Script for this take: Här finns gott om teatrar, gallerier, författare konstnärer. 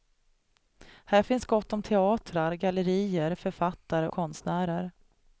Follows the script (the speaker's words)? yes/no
yes